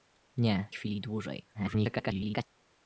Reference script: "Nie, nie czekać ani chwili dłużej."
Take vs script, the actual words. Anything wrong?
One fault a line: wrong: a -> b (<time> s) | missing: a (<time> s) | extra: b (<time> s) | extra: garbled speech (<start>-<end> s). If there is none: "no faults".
missing: nie czekać ani (0.7 s)
extra: garbled speech (1.5-2.5 s)